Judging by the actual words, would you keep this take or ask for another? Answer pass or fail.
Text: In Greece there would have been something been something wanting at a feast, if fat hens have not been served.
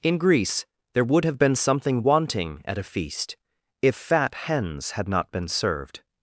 fail